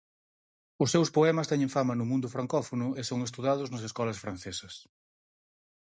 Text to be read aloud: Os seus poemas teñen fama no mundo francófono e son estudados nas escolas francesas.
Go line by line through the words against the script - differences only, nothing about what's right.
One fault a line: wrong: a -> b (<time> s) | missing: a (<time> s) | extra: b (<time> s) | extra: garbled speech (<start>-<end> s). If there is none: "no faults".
no faults